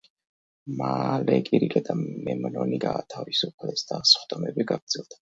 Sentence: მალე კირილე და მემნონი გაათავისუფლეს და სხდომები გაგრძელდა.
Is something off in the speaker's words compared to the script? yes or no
no